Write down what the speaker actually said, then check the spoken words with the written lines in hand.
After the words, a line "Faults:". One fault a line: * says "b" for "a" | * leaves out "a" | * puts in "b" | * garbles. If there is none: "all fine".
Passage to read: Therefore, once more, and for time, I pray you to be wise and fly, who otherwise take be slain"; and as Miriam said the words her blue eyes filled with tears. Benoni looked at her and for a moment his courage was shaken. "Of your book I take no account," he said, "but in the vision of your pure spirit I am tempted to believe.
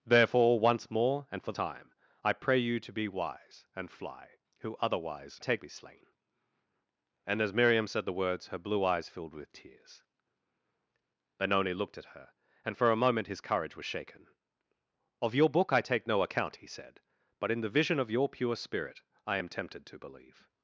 Therefore, once more, and for time, I pray you to be wise and fly, who otherwise take be slain"; and as Miriam said the words her blue eyes filled with tears. Benoni looked at her and for a moment his courage was shaken. "Of your book I take no account," he said, "but in the vision of your pure spirit I am tempted to believe.
Faults:
all fine